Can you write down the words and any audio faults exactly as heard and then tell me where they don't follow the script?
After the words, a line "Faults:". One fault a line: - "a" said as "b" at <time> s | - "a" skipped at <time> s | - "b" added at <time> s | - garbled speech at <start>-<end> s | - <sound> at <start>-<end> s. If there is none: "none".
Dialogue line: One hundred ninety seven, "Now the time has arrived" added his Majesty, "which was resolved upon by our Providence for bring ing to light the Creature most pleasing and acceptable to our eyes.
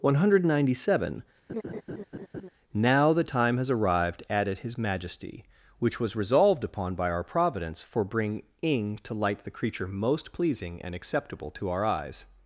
One hundred ninety seven, "Now the time has arrived" added his Majesty, "which was resolved upon by our Providence for bring ing to light the Creature most pleasing and acceptable to our eyes.
Faults:
- laugh at 1.5-2.5 s